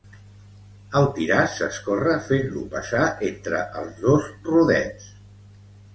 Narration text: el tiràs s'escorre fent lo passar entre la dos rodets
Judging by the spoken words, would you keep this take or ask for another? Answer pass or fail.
fail